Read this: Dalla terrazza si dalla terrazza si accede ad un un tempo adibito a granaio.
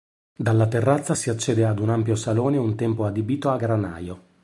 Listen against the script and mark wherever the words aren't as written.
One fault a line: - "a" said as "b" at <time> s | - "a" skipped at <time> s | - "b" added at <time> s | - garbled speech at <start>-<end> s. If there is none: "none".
- "dalla terrazza si" skipped at 1.3 s
- "ampio salone" added at 1.9 s